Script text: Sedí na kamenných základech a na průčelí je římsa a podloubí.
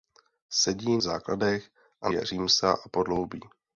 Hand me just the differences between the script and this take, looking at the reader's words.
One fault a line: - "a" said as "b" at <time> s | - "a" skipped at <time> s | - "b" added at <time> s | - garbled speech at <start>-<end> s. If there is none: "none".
- "na kamenných" skipped at 1.0 s
- "na průčelí" skipped at 2.1 s